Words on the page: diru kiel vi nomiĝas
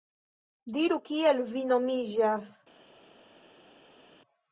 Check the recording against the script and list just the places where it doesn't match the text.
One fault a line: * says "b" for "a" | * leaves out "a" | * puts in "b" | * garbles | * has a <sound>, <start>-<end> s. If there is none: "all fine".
all fine